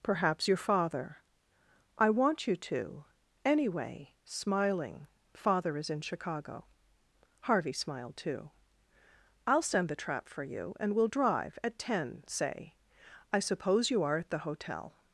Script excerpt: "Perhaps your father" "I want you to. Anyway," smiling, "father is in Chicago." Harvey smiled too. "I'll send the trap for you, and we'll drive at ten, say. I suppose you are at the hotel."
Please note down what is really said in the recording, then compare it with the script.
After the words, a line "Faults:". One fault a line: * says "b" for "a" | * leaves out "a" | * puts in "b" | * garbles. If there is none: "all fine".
"Perhaps your father" "I want you to. Anyway," smiling, "father is in Chicago." Harvey smiled too. "I'll send the trap for you, and we'll drive at ten, say. I suppose you are at the hotel."
Faults:
all fine